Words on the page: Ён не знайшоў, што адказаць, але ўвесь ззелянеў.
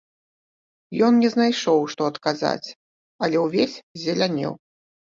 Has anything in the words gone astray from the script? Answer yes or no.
no